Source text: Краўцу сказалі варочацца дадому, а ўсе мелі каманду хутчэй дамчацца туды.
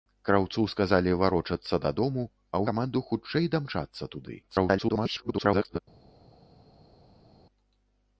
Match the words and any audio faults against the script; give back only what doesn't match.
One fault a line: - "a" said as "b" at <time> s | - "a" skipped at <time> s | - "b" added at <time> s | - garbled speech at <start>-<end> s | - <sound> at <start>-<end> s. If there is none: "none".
- "ўсе мелі" skipped at 2.6 s
- garbled speech at 4.4-5.8 s